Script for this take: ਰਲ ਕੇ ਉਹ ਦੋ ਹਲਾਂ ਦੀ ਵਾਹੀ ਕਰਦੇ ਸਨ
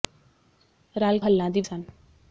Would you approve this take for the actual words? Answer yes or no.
no